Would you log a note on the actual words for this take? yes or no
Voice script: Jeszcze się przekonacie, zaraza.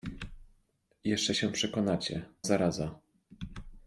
no